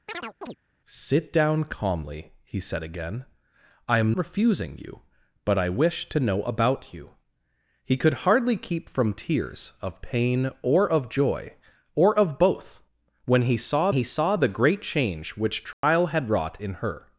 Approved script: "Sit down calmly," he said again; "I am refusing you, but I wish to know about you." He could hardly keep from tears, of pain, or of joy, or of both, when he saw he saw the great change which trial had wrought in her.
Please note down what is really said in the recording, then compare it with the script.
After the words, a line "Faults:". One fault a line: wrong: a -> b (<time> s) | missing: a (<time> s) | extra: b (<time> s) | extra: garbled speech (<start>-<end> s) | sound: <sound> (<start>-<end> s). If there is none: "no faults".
"Sit down calmly," he said again; "I am refusing you, but I wish to know about you." He could hardly keep from tears, of pain, or of joy, or of both, when he saw he saw the great change which trial had wrought in her.
Faults:
sound: chirp (0.1-0.6 s)
sound: dropout (15.7-15.8 s)